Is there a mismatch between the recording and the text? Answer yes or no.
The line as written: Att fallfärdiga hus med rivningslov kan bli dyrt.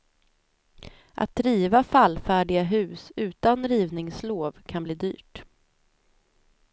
yes